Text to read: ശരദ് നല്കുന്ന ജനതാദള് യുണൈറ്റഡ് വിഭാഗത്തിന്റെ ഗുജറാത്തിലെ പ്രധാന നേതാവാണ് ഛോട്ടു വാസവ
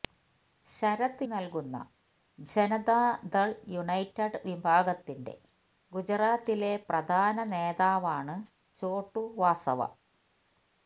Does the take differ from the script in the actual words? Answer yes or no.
no